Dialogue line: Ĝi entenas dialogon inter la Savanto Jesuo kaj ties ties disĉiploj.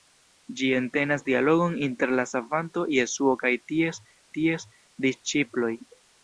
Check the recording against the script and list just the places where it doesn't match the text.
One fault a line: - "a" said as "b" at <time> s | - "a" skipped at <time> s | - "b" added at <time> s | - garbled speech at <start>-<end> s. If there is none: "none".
none